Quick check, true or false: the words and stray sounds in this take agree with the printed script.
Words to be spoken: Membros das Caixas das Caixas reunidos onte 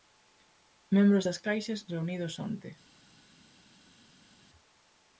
false